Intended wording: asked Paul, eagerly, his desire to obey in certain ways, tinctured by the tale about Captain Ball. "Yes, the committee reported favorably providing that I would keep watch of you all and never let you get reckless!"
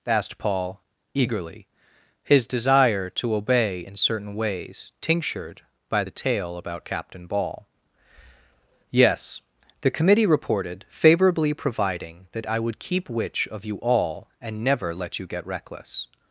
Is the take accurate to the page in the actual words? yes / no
no